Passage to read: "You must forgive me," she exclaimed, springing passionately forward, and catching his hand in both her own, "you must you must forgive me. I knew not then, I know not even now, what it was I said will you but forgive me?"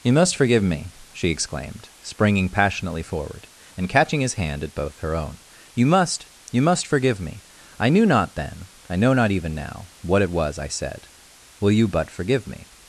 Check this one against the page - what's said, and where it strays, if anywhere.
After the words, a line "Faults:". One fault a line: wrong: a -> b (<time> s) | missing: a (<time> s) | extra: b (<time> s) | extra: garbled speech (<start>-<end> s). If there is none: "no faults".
"You must forgive me," she exclaimed, springing passionately forward, and catching his hand at both her own, "you must you must forgive me. I knew not then, I know not even now, what it was I said will you but forgive me?"
Faults:
wrong: in -> at (4.6 s)